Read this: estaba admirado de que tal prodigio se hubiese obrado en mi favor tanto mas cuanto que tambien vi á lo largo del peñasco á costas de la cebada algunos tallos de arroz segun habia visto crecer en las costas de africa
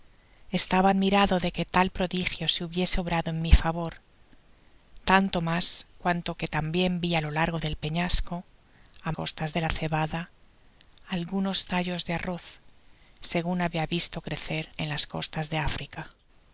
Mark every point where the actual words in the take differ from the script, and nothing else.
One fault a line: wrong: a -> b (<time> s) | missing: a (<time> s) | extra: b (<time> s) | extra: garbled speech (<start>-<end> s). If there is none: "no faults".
no faults